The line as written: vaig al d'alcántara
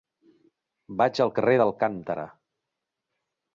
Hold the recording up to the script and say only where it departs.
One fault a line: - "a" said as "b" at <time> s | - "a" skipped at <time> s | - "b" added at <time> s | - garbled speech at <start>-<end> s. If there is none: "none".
- "carrer" added at 1.4 s